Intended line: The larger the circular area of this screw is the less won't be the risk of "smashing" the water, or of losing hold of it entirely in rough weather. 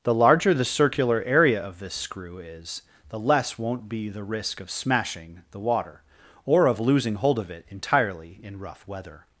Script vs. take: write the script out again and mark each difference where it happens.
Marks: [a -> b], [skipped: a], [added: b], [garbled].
The larger the circular area of this screw is the less won't be the risk of "smashing" the water, or of losing hold of it entirely in rough weather.